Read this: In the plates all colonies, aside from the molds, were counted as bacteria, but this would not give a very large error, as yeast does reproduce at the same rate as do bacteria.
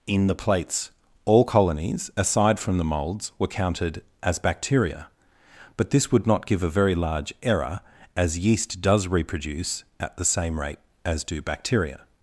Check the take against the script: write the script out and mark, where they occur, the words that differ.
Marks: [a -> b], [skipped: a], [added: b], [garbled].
In the plates all colonies, aside from the molds, were counted as bacteria, but this would not give a very large error, as yeast does reproduce at the same rate as do bacteria.